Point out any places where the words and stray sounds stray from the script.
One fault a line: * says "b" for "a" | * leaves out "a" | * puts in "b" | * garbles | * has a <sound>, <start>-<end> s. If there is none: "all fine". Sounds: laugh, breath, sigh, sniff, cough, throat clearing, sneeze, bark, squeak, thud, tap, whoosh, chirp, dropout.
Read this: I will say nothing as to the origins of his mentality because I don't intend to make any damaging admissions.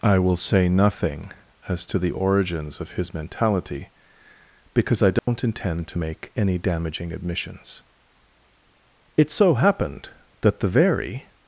* has a dropout, 5.2-5.3 s
* puts in "It so happened that the very"